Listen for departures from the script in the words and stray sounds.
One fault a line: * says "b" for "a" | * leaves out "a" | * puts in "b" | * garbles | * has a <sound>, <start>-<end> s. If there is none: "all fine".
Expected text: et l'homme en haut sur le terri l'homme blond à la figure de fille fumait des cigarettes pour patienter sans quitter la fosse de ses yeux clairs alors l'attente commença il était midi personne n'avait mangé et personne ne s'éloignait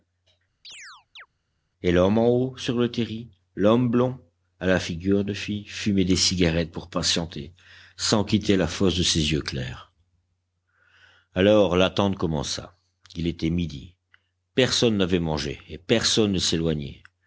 * has a chirp, 0.6-1.3 s